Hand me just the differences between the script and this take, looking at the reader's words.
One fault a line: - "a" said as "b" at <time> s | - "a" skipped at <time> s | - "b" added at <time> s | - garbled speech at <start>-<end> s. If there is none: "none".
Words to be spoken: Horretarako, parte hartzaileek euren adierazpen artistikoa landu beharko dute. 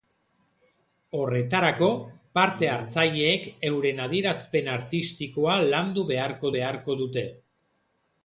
- "beharko" added at 6.6 s